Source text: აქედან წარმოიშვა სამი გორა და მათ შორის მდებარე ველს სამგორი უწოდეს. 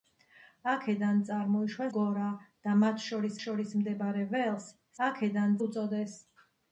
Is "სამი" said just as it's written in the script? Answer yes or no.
no